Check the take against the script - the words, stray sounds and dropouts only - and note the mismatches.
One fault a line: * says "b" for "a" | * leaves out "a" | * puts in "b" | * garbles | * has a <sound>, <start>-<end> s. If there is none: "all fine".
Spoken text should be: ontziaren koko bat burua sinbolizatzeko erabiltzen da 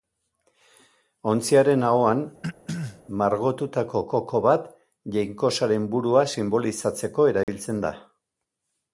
* puts in "ahoan margotutako"
* has a throat clearing, 2.4-3.0 s
* puts in "jainkosaren"
* has a dropout, 7.4-7.5 s